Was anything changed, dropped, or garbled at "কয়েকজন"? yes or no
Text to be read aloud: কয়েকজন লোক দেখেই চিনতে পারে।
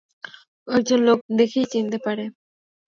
no